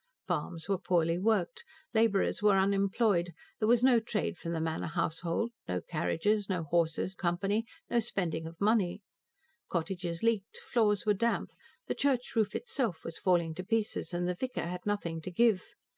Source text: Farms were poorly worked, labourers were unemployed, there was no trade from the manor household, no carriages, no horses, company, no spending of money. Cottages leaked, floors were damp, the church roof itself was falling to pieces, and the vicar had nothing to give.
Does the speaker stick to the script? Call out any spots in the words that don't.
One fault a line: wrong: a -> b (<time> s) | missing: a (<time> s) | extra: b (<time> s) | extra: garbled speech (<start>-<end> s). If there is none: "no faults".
no faults